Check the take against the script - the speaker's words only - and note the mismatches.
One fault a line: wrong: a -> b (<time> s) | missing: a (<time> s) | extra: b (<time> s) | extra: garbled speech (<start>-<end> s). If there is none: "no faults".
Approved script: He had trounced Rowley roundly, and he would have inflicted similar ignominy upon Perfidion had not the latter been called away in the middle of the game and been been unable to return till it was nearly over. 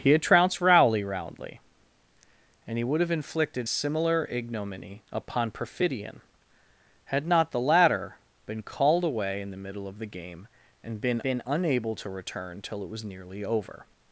no faults